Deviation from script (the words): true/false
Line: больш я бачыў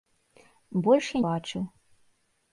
false